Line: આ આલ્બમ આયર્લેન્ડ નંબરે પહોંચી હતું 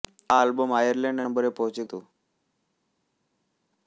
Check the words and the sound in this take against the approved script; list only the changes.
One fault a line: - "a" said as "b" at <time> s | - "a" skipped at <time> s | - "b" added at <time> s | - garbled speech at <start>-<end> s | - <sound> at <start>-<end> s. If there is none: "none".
none